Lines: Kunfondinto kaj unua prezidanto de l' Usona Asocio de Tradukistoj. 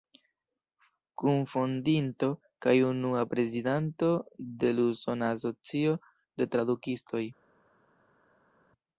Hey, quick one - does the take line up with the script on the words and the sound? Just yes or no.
yes